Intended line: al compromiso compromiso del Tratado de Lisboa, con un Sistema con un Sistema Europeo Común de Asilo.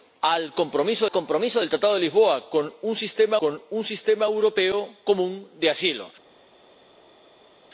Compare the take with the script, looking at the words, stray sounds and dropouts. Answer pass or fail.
pass